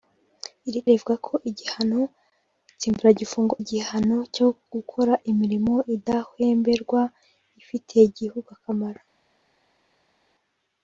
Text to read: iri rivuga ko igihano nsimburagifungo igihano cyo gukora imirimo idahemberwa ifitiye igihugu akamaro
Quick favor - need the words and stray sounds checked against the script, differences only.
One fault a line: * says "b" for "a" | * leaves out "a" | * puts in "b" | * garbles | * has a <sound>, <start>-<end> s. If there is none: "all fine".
all fine